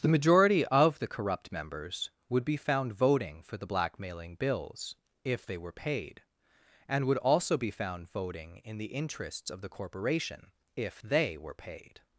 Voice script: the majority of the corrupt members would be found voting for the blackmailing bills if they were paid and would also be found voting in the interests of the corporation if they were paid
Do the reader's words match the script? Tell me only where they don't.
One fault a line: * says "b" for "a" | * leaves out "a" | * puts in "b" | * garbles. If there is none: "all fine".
all fine